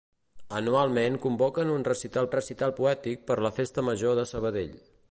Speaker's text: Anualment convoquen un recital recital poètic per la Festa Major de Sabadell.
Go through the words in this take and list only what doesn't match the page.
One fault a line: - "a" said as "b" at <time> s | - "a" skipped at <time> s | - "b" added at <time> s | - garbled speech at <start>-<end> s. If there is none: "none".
none